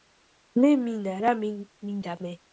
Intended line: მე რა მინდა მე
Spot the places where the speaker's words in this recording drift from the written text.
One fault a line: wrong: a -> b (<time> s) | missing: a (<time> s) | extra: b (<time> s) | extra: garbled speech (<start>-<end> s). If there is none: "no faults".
extra: მინა (0.8 s)